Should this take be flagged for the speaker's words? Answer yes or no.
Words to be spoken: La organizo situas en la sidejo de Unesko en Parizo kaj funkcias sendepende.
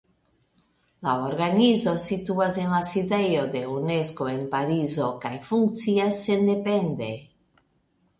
no